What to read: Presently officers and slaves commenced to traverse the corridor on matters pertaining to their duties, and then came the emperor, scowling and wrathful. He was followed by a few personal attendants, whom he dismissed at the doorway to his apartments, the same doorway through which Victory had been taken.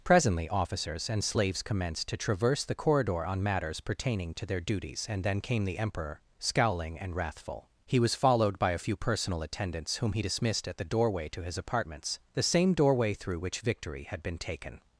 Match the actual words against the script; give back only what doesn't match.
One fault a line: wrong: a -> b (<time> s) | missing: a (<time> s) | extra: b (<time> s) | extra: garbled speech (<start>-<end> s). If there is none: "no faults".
no faults